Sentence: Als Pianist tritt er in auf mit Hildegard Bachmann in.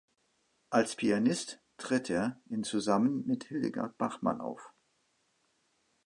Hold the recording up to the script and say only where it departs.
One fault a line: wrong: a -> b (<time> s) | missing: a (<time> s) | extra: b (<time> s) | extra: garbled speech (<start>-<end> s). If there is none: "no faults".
wrong: auf -> zusammen (2.6 s)
wrong: in -> auf (4.4 s)